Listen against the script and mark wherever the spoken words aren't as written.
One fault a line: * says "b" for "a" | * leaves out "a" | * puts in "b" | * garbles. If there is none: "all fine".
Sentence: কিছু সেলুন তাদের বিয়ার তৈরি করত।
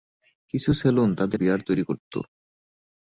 all fine